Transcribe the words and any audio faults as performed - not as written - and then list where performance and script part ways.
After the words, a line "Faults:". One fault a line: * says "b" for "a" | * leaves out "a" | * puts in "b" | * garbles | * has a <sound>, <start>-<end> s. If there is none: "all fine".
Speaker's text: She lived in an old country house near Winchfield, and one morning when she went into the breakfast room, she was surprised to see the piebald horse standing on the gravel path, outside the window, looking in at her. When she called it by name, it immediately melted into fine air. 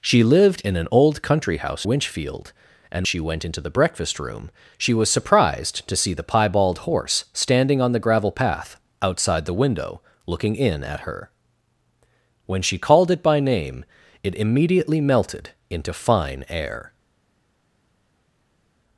She lived in an old country house Winchfield, and she went into the breakfast room, she was surprised to see the piebald horse standing on the gravel path, outside the window, looking in at her. When she called it by name, it immediately melted into fine air.
Faults:
* leaves out "near"
* leaves out "one morning when"